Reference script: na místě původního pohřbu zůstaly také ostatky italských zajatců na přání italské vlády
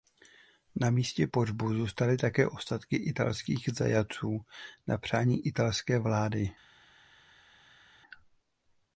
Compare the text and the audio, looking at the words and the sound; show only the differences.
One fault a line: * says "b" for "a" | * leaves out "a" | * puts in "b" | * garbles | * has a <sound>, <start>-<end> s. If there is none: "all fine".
* leaves out "původního"